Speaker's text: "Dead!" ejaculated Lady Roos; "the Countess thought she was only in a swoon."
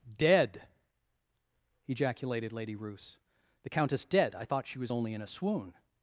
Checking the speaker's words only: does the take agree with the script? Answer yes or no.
no